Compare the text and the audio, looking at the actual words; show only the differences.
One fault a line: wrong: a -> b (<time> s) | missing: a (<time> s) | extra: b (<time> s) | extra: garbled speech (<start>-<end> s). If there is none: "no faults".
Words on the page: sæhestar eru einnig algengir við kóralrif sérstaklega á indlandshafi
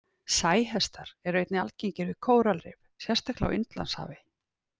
no faults